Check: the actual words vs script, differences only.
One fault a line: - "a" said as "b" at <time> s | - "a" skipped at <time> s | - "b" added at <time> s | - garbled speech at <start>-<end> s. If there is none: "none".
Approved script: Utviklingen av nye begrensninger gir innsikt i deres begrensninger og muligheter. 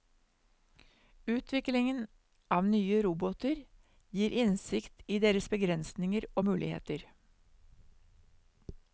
- "begrensninger" said as "roboter" at 3.0 s